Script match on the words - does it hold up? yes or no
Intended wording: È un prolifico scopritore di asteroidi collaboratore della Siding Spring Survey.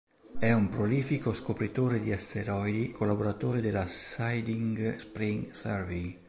yes